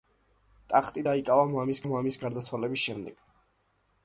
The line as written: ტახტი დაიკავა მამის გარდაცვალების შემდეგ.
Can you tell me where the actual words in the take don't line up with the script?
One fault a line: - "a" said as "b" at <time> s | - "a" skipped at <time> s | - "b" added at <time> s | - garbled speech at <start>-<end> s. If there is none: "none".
- "მამის" added at 1.9 s